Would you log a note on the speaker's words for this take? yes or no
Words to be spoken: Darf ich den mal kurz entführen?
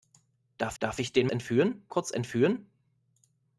yes